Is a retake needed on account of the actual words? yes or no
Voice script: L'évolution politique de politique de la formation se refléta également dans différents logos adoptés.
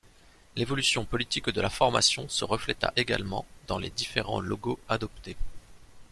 yes